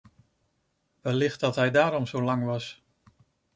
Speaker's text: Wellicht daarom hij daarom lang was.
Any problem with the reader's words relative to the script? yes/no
yes